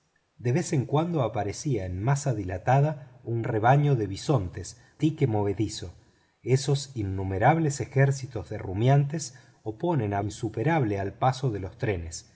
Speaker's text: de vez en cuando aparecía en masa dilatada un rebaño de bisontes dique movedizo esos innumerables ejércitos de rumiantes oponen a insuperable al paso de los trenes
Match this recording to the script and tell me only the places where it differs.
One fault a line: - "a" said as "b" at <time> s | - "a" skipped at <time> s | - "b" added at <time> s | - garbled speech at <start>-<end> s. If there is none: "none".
none